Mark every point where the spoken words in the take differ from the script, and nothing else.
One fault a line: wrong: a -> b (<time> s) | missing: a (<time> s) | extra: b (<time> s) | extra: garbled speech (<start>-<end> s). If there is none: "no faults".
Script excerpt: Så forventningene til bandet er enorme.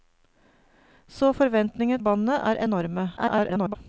missing: til (2.0 s)
extra: garbled speech (3.2-3.8 s)